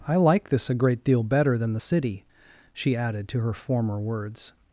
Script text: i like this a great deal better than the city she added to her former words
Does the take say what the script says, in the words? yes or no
yes